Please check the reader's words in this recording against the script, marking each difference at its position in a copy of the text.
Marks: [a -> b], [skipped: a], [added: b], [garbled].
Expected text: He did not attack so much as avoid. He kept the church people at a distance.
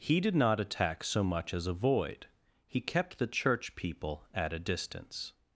He did not attack so much as avoid. He kept the church people at a distance.